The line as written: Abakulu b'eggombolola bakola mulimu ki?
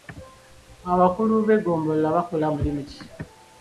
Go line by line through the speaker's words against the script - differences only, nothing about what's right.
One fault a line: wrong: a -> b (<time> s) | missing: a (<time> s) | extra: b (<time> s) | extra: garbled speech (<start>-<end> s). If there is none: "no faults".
no faults